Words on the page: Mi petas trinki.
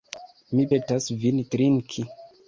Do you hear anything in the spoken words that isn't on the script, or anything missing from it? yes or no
yes